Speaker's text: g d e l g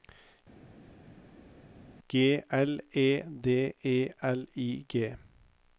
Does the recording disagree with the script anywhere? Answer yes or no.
yes